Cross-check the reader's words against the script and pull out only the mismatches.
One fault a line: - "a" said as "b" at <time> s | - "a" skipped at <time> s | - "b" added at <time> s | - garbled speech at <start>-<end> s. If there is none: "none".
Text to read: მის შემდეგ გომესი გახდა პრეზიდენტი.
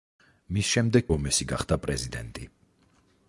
none